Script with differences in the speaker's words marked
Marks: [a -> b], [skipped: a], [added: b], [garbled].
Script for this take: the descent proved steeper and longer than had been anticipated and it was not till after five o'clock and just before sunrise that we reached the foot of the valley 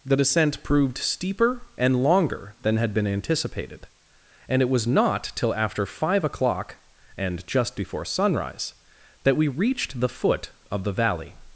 the descent proved steeper and longer than had been anticipated and it was not till after five o'clock and just before sunrise that we reached the foot of the valley